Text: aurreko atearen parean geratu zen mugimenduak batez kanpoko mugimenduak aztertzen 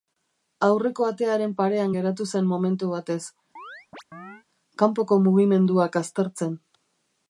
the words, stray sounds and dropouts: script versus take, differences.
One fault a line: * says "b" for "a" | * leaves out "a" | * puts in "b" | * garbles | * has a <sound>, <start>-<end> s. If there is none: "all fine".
* says "momentu" for "mugimenduak"
* has a chirp, 3.6-4.4 s